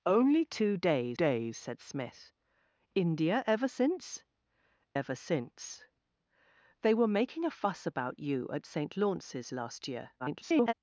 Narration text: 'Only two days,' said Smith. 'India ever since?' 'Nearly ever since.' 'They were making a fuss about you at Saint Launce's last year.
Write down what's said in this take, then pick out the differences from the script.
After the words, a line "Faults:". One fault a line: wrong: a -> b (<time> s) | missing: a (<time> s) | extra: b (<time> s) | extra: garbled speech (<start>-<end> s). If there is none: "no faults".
'Only two days days,' said Smith. 'India ever since?' 'Ever since.' 'They were making a fuss about you at Saint Launce's last year. [garbled]
Faults:
extra: days (1.1 s)
missing: Nearly (4.2 s)
extra: garbled speech (10.2-10.7 s)